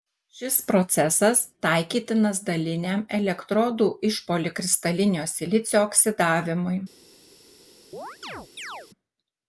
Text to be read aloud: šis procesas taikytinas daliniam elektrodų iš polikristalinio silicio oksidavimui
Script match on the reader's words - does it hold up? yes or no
yes